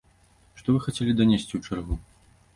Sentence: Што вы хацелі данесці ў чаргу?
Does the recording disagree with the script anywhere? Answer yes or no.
no